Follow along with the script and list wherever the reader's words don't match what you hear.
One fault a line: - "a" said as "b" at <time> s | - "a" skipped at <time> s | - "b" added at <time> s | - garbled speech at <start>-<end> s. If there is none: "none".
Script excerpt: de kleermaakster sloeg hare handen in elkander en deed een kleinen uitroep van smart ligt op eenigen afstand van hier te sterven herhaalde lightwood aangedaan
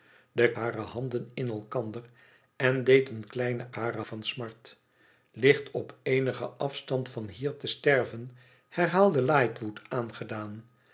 - "kleermaakster sloeg" skipped at 0.5 s
- "uitroep" said as "hare" at 3.7 s